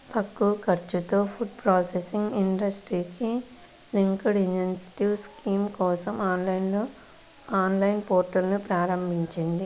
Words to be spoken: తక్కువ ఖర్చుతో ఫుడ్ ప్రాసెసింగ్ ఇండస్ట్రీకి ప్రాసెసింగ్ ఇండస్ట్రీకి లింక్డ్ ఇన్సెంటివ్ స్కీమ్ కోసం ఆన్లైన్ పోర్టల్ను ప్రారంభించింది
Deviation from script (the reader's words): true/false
true